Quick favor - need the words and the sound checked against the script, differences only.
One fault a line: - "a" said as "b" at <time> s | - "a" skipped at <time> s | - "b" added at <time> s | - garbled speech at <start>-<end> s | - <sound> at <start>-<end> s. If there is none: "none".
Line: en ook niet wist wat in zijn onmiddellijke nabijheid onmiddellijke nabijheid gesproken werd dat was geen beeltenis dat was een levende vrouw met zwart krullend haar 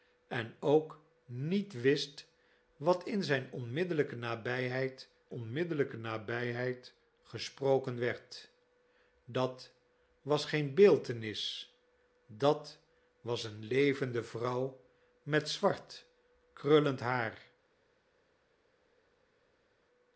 none